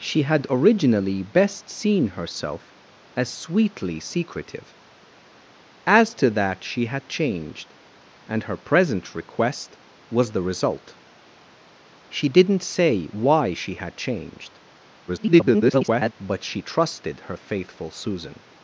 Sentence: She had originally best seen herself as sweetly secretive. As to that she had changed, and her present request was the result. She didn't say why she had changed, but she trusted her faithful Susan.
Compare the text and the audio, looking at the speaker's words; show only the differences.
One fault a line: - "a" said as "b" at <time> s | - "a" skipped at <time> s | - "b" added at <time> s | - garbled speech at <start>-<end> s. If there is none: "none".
- garbled speech at 15.1-16.1 s